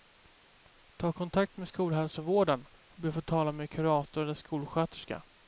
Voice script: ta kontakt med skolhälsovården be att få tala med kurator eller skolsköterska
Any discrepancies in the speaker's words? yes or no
yes